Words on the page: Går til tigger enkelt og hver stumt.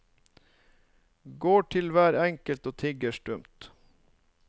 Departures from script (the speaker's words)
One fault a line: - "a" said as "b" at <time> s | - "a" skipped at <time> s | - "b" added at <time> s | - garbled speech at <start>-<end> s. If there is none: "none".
- "tigger" said as "hver" at 1.9 s
- "hver" said as "tigger" at 2.8 s